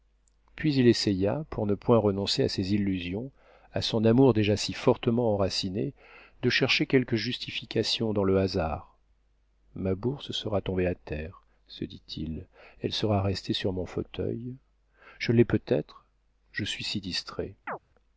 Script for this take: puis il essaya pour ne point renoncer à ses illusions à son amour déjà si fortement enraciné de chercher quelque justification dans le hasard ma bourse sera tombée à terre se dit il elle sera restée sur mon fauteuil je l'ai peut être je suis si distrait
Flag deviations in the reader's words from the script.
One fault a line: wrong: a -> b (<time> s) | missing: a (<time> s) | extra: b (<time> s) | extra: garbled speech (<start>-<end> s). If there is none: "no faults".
no faults